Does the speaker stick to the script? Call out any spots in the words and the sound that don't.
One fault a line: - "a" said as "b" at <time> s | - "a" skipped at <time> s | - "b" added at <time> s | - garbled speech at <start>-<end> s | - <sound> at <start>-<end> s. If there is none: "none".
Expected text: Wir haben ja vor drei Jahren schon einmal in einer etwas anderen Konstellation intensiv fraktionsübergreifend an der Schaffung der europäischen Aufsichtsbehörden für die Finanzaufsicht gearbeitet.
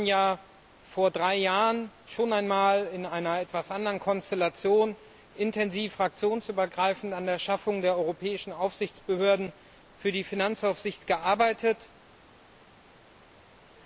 none